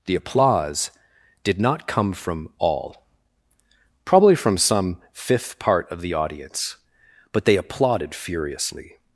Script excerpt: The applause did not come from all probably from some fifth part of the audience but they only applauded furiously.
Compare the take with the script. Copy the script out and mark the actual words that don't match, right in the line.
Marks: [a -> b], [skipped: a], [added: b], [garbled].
The applause did not come from all probably from some fifth part of the audience but they [skipped: only] applauded furiously.